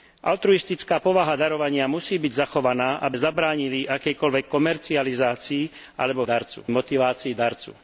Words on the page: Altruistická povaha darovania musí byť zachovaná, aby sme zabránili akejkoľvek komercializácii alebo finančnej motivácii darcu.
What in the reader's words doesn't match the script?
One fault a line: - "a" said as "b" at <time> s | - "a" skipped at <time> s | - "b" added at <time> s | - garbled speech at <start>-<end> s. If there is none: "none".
- "sme" skipped at 3.2 s
- "finančnej" said as "darcu" at 6.2 s